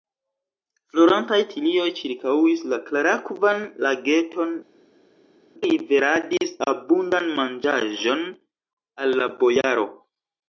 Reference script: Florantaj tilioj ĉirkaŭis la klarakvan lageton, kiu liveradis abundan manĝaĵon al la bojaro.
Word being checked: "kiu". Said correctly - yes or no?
no